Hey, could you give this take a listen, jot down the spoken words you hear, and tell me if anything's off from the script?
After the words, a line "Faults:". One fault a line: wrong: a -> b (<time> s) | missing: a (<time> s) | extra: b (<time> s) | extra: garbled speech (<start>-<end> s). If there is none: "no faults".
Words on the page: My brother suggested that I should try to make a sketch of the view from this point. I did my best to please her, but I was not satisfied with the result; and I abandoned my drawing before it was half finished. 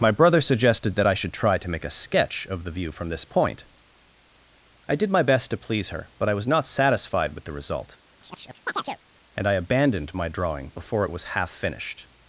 My brother suggested that I should try to make a sketch of the view from this point. I did my best to please her, but I was not satisfied with the result; and I abandoned my drawing before it was half finished.
Faults:
no faults